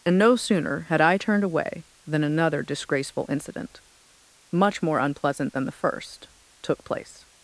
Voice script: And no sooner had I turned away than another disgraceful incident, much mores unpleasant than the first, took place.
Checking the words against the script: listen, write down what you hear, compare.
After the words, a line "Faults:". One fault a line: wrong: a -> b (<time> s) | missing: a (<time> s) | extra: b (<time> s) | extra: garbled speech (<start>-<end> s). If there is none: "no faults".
And no sooner had I turned away than another disgraceful incident, much more unpleasant than the first, took place.
Faults:
wrong: mores -> more (4.8 s)